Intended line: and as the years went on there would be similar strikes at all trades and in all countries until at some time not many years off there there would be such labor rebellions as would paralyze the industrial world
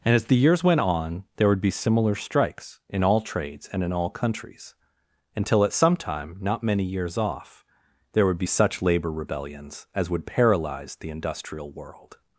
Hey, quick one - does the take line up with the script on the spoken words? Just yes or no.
no